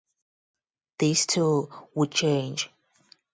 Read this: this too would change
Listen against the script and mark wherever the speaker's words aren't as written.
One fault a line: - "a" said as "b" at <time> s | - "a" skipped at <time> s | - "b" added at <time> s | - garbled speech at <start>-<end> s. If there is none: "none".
none